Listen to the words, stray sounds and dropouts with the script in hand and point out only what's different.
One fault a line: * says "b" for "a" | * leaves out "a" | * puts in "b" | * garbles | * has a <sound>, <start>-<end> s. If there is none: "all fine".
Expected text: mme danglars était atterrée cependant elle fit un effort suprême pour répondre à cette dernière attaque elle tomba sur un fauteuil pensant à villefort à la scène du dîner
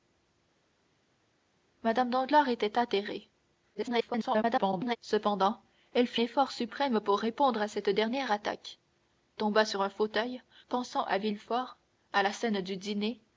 * garbles
* leaves out "un"
* leaves out "elle"